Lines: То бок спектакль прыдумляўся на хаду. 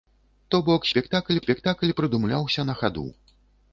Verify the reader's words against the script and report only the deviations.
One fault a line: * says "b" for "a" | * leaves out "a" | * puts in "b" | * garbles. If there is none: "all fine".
* puts in "спектакль"